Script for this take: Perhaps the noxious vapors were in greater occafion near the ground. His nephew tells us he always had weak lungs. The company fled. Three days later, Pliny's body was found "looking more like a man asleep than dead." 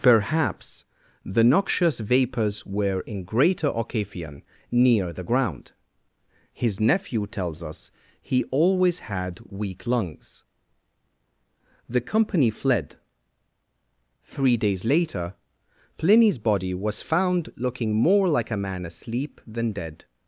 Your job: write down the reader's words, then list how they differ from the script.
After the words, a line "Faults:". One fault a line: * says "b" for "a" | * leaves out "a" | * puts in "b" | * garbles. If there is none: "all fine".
Perhaps the noxious vapors were in greater occafion near the ground. His nephew tells us he always had weak lungs. The company fled. Three days later, Pliny's body was found "looking more like a man asleep than dead."
Faults:
all fine